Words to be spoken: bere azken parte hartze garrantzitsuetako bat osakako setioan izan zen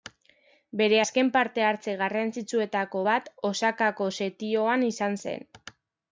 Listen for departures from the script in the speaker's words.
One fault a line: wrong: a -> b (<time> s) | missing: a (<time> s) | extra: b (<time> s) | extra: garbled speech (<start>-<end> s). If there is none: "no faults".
no faults